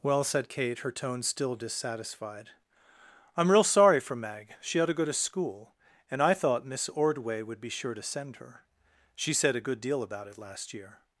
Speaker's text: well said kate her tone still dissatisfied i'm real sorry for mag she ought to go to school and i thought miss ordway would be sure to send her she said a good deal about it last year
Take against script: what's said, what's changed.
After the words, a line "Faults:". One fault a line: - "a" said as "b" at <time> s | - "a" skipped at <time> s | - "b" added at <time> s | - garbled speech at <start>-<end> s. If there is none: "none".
well said kate her tone still dissatisfied i'm real sorry for mag she ought to go to school and i thought miss ordway would be sure to send her she said a good deal about it last year
Faults:
none